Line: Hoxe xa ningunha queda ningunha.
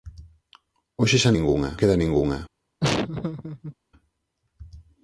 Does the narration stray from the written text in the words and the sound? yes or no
yes